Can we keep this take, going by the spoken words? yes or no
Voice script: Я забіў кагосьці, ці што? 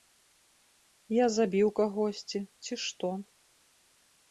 yes